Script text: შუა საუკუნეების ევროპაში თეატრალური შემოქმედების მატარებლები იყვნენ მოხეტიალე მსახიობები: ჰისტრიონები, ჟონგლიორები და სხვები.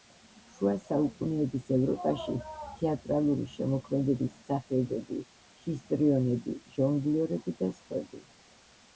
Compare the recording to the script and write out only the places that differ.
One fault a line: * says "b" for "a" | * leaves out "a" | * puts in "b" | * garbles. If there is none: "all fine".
* leaves out "მატარებლები იყვნენ მოხეტიალე"